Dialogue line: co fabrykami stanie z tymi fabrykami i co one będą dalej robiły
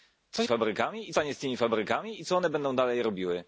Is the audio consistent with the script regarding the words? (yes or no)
yes